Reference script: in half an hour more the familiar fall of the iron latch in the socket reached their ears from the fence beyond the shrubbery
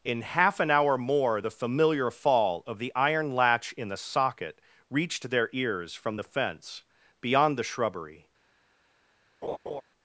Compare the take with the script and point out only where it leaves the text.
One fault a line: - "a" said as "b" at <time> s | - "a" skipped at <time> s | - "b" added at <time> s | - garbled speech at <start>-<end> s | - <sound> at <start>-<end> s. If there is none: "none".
- laugh at 9.4-9.8 s